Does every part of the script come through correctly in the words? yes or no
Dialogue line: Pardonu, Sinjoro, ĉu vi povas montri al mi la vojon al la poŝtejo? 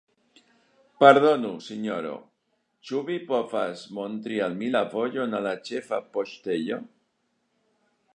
no